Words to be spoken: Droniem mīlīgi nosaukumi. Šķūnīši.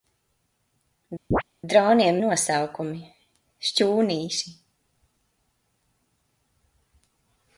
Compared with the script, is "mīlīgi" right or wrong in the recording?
wrong